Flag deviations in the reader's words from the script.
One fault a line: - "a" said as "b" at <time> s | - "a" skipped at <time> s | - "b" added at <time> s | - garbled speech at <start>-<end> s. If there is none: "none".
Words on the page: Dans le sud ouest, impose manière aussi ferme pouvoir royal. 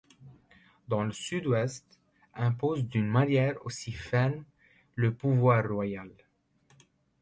- "d'une" added at 2.9 s
- "le" added at 5.0 s